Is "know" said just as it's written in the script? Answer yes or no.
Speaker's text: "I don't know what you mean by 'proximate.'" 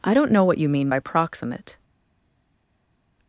yes